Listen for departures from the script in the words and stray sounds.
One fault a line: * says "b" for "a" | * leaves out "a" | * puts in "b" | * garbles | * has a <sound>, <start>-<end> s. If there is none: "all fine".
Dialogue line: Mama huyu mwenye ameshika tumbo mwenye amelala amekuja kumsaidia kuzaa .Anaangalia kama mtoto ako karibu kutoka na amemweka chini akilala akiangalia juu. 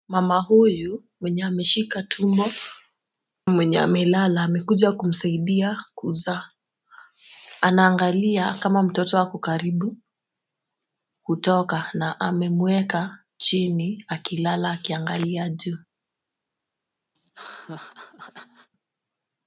* has a laugh, 17.1-18.7 s